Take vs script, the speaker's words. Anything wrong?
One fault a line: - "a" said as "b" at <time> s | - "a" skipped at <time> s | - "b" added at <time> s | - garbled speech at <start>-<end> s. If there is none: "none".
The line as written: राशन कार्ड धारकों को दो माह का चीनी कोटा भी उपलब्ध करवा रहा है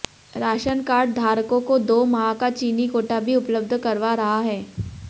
none